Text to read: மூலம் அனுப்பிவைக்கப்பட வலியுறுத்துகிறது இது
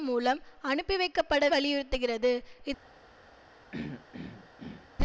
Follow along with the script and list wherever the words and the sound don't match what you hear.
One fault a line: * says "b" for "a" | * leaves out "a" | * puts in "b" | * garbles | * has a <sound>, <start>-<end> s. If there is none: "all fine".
* has a throat clearing, 3.7-4.9 s